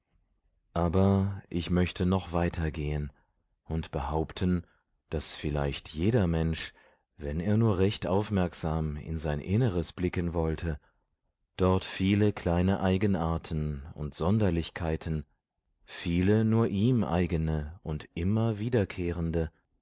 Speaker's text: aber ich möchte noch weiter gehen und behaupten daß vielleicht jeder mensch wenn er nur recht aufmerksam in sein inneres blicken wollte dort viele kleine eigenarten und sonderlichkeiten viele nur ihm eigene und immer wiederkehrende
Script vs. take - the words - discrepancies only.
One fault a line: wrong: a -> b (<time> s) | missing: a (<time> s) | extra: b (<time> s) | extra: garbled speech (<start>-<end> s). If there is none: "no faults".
no faults